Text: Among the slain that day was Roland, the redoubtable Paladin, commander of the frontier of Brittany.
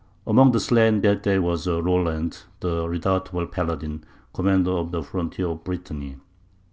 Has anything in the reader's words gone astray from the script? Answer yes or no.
no